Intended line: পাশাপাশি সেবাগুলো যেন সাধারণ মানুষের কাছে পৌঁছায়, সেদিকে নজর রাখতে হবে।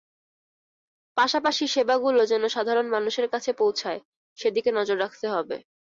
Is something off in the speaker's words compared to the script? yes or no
no